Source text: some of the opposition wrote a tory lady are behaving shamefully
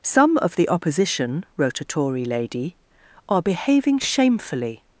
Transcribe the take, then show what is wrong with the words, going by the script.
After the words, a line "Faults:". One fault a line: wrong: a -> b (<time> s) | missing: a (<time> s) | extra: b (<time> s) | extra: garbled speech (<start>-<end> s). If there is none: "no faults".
some of the opposition wrote a tory lady are behaving shamefully
Faults:
no faults